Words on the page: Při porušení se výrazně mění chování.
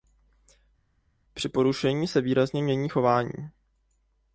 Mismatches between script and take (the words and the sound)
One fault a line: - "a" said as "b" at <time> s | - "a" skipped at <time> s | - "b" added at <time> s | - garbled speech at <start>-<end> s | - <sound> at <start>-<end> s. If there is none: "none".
none